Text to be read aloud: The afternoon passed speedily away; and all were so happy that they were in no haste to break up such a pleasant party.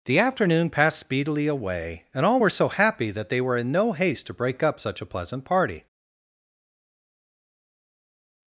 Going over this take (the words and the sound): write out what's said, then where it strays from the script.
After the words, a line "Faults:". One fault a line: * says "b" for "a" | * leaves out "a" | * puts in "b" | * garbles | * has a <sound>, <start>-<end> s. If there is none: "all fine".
The afternoon passed speedily away; and all were so happy that they were in no haste to break up such a pleasant party.
Faults:
all fine